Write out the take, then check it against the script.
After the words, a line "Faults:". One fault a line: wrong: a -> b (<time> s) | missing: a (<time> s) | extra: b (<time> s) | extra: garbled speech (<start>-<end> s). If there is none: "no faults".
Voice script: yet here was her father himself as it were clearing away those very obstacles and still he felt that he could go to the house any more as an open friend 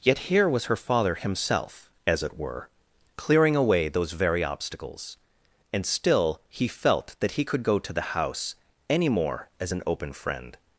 yet here was her father himself as it were clearing away those very obstacles and still he felt that he could go to the house any more as an open friend
Faults:
no faults